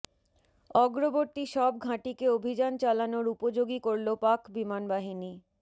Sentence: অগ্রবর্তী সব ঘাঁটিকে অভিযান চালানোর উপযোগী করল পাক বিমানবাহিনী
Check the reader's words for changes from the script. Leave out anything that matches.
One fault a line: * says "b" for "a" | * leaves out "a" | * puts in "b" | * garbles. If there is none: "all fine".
all fine